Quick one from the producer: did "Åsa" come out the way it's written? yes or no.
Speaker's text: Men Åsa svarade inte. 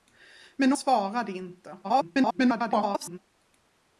no